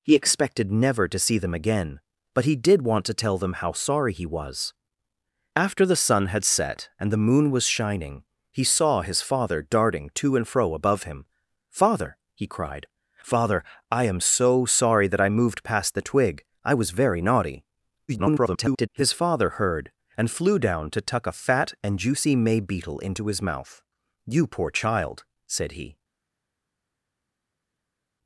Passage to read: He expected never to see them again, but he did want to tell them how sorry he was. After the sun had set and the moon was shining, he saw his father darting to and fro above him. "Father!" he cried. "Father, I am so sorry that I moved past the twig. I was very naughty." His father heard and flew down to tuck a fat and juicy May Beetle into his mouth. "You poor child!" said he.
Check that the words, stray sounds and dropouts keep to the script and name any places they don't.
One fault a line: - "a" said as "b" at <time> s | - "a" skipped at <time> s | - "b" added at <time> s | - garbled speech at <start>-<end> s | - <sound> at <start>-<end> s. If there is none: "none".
- garbled speech at 18.1-18.9 s